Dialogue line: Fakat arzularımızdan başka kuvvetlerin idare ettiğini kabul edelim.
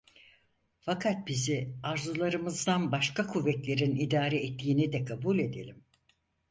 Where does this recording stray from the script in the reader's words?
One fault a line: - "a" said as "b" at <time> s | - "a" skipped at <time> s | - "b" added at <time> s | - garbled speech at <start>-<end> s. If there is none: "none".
- "bizi" added at 1.3 s
- "de" added at 4.9 s